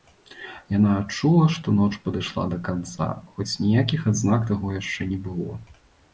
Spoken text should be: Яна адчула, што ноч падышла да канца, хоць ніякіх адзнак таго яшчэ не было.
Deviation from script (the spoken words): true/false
false